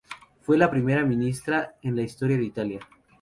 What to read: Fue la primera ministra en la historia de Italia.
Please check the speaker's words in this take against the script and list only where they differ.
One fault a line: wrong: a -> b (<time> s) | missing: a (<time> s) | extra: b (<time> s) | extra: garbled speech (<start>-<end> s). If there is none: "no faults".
no faults